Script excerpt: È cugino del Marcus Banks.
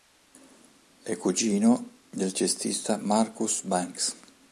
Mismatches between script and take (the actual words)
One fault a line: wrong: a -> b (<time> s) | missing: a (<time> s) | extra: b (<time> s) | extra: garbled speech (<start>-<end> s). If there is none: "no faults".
extra: cestista (2.3 s)